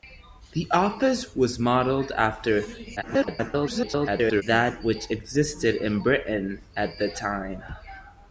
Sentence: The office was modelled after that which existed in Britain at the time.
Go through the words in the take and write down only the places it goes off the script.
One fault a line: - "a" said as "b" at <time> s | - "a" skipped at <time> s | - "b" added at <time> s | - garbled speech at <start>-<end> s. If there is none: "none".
- garbled speech at 3.0-4.4 s